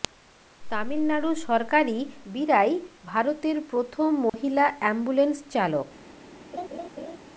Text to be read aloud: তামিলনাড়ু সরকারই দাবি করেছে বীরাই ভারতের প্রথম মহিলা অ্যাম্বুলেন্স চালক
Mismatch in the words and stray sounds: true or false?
true